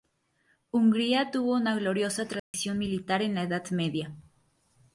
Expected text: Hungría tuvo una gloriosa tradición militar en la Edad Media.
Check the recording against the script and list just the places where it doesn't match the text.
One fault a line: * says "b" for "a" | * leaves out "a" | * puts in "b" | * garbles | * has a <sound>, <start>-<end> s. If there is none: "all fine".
* has a dropout, 2.4-2.5 s